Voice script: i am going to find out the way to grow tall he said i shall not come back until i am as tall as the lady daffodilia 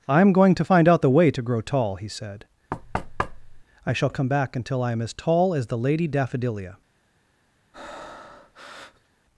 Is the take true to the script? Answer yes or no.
no